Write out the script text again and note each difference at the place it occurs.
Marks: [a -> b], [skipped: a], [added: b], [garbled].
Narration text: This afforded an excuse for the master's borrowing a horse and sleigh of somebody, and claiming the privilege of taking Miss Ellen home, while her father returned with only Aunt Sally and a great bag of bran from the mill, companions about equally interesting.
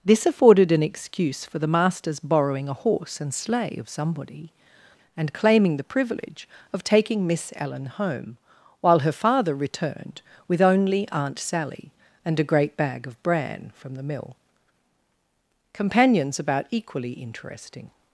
This afforded an excuse for the master's borrowing a horse and sleigh of somebody, and claiming the privilege of taking Miss Ellen home, while her father returned with only Aunt Sally and a great bag of bran from the mill, companions about equally interesting.